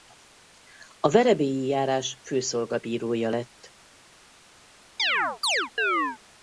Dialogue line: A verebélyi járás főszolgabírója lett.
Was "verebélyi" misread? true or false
false